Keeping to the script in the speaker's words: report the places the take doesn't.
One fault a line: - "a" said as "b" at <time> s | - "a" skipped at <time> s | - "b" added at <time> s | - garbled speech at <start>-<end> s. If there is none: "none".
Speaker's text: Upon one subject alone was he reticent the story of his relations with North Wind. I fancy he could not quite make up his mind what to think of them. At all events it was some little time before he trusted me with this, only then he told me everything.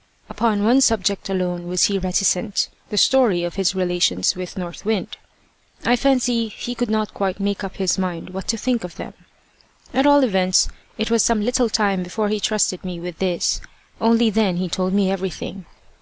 none